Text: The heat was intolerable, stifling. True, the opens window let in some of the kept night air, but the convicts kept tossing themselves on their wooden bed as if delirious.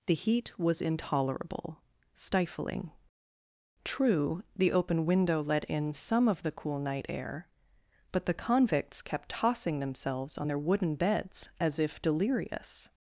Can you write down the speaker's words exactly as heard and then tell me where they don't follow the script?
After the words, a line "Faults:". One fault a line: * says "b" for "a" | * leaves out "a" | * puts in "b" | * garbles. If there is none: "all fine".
The heat was intolerable, stifling. True, the open window let in some of the cool night air, but the convicts kept tossing themselves on their wooden beds as if delirious.
Faults:
* says "open" for "opens"
* says "cool" for "kept"
* says "beds" for "bed"